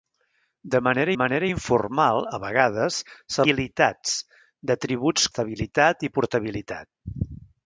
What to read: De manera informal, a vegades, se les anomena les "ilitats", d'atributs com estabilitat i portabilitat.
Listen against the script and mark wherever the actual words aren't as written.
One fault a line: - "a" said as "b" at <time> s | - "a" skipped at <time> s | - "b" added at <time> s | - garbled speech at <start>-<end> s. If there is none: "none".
- "manera" added at 1.2 s
- "les anomena les" skipped at 3.5 s
- "com" skipped at 5.3 s